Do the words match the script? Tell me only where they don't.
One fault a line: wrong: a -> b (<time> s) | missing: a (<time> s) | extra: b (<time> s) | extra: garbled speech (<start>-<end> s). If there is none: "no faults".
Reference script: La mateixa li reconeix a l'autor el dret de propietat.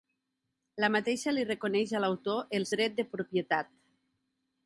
no faults